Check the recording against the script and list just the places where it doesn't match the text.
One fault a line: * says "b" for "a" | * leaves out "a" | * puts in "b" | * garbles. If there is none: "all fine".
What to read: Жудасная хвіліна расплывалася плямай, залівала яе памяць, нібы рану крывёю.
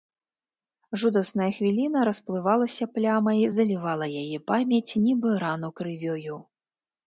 all fine